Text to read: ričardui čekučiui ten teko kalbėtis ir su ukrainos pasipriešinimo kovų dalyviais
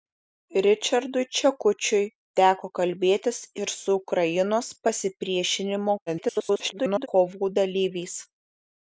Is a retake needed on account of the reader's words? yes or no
yes